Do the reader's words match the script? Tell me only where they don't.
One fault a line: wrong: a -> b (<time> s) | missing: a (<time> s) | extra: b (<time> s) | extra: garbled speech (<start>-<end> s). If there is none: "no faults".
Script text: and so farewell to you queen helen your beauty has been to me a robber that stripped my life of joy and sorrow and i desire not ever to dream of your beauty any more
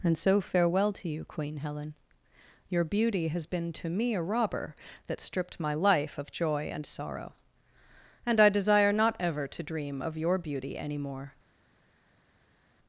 no faults